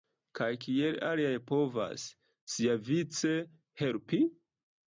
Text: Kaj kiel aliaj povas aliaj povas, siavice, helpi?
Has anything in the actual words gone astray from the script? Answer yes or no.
yes